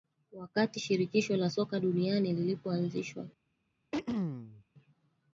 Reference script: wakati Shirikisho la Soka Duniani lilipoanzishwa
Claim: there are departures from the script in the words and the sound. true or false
true